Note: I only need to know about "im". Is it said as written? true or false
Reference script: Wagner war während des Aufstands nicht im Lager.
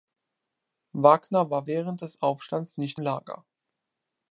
false